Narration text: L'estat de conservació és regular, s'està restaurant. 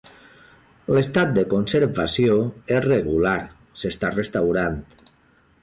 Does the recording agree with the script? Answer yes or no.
yes